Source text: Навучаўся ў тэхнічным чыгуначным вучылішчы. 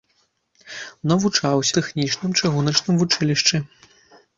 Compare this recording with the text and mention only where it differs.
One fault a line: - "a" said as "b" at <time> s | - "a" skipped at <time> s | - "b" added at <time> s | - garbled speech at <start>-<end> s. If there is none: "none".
- "ў" skipped at 1.8 s